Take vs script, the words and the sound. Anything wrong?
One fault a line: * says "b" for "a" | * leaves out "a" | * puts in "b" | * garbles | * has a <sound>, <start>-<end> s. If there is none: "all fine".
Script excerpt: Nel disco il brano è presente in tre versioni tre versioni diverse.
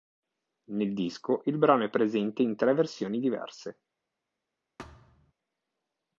* leaves out "tre versioni"
* has a thud, 4.8-5.3 s